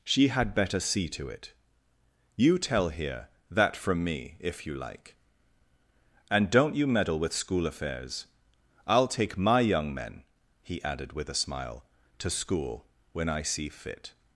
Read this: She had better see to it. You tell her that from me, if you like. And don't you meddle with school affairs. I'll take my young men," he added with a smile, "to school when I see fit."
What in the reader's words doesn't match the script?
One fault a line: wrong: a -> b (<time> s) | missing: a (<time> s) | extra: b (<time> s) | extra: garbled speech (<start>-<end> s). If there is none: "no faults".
wrong: her -> here (2.9 s)